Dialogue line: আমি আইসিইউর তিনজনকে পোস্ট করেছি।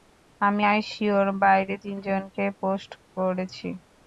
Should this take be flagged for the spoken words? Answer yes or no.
yes